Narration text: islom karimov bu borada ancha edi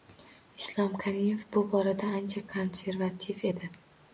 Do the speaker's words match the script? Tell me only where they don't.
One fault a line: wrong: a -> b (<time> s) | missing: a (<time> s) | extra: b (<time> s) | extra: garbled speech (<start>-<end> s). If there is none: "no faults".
extra: konservativ (2.5 s)